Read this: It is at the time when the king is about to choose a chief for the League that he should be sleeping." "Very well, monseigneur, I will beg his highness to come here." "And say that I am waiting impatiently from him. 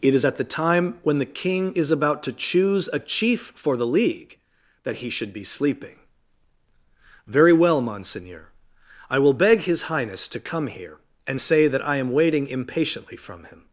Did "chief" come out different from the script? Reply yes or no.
no